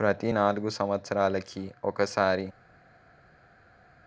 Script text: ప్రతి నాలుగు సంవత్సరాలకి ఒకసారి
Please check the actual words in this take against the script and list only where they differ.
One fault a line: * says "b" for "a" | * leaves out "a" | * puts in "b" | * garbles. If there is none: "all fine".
all fine